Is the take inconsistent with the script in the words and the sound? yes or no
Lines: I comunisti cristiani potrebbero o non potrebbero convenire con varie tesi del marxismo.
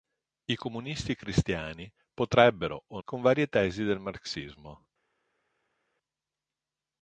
yes